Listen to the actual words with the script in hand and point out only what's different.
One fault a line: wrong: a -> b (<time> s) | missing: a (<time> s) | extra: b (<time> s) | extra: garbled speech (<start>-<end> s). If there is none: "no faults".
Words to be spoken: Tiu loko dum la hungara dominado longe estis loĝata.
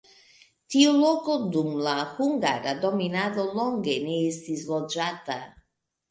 extra: ne (4.1 s)